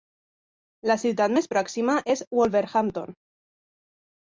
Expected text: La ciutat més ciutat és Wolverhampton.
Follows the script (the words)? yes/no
no